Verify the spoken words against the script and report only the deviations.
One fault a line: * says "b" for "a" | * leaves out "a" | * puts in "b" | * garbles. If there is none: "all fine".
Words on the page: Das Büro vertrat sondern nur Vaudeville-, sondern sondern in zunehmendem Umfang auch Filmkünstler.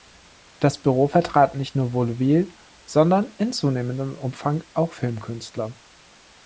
* says "nicht" for "sondern"
* leaves out "sondern"